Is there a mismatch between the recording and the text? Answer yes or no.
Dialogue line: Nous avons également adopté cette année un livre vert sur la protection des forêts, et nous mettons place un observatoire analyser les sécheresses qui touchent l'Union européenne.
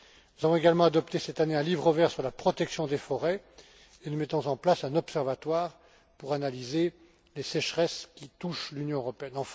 yes